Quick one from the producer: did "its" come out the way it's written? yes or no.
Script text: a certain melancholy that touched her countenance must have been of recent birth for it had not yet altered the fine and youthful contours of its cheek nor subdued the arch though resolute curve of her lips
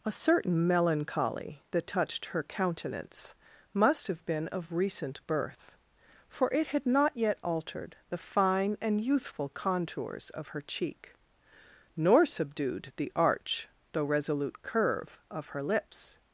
no